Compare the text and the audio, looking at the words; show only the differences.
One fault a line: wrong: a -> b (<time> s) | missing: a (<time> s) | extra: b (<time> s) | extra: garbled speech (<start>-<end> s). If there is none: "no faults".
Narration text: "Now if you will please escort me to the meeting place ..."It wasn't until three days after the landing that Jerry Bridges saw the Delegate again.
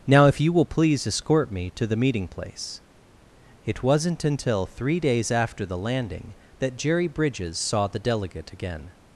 no faults